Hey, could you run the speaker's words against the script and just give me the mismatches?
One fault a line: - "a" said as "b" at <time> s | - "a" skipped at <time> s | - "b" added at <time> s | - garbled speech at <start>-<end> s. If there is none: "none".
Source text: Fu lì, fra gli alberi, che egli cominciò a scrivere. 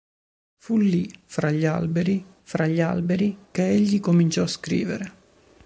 - "fra gli alberi" added at 2.4 s